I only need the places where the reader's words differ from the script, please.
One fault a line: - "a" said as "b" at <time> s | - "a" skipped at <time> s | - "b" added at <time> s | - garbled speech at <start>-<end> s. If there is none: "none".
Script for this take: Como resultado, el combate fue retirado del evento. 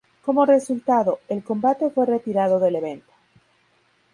none